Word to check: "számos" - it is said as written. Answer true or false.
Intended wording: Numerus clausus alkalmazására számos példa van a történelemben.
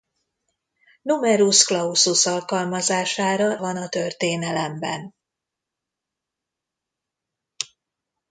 false